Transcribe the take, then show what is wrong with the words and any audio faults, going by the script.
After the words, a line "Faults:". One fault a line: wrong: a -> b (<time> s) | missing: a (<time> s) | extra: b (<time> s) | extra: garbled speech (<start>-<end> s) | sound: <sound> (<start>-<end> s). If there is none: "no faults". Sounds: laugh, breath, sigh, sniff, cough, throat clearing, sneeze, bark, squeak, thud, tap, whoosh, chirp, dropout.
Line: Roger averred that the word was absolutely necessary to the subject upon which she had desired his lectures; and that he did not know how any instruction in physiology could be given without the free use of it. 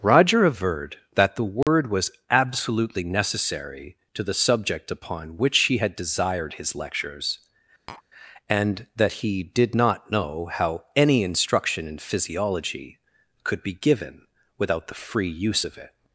Roger averred that the word was absolutely necessary to the subject upon which he had desired his lectures; and that he did not know how any instruction in physiology could be given without the free use of it.
Faults:
sound: dropout (1.6-1.7 s)
wrong: she -> he (5.6 s)
sound: tap (7.9-8.0 s)